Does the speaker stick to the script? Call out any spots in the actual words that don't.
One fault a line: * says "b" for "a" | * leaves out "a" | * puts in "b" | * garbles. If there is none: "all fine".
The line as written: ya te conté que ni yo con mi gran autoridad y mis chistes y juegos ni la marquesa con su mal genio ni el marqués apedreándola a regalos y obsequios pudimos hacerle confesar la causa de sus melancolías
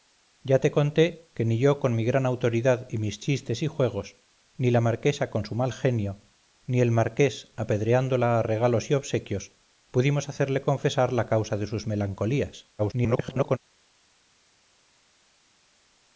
* garbles